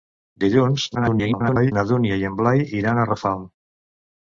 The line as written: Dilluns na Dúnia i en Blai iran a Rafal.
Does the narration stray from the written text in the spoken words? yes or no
yes